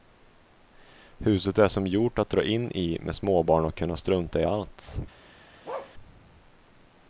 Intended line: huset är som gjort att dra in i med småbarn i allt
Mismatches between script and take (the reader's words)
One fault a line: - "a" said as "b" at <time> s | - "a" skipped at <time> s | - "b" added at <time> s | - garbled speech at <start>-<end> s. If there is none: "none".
- "och kunna strunta" added at 3.6 s